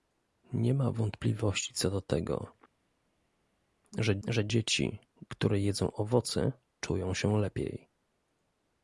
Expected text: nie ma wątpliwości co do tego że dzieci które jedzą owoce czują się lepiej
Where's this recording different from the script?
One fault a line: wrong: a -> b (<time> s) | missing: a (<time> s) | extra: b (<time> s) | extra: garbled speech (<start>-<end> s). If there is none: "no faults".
extra: że (4.3 s)